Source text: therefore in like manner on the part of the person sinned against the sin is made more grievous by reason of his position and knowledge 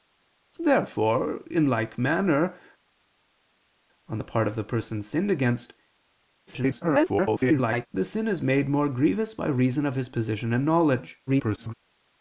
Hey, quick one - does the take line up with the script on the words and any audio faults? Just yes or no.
no